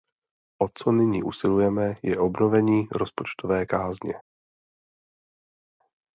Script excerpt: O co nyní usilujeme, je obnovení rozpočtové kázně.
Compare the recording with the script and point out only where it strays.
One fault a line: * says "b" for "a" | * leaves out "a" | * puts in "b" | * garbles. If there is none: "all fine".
all fine